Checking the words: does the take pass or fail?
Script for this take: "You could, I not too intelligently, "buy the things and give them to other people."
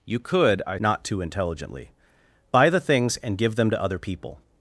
pass